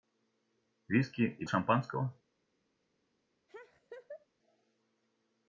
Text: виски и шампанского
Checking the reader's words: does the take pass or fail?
pass